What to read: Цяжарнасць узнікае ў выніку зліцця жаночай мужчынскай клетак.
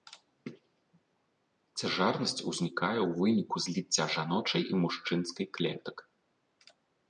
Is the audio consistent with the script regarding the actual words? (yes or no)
no